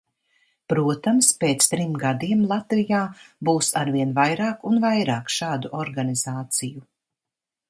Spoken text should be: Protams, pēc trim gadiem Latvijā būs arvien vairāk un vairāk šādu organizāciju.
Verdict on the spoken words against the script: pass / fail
pass